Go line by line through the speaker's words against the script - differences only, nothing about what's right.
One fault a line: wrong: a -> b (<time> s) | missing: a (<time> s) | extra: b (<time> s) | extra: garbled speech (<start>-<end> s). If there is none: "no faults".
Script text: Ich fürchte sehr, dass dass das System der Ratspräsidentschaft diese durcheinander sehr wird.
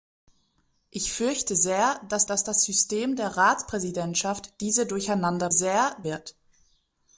no faults